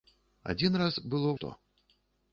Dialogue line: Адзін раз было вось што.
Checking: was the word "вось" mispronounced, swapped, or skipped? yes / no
yes